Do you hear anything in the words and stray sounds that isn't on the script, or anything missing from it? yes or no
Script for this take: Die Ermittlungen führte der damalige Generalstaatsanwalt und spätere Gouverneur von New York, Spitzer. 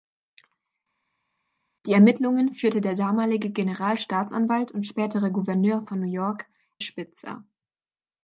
no